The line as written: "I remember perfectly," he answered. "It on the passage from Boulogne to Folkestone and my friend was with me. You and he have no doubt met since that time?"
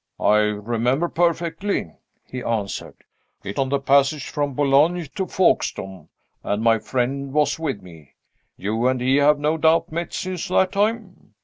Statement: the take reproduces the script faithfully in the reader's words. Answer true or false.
true